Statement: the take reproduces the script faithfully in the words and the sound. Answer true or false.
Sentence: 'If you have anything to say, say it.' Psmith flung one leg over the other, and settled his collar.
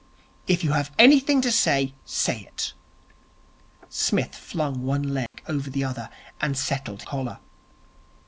false